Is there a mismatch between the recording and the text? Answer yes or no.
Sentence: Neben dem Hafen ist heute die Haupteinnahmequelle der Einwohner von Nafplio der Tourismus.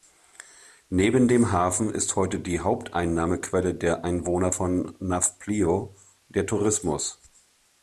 no